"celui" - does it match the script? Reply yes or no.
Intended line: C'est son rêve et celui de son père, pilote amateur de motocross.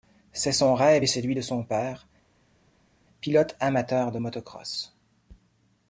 yes